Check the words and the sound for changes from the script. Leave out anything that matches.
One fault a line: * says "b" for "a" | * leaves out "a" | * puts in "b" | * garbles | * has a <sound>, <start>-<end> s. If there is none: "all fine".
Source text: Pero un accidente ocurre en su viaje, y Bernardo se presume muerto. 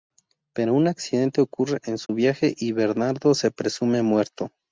* has a dropout, 2.1-2.1 s